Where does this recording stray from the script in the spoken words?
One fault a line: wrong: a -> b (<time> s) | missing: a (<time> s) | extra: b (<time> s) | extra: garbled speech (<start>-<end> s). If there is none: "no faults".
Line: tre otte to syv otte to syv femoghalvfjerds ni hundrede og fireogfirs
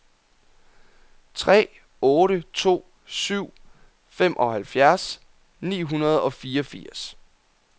missing: otte to syv (3.5 s)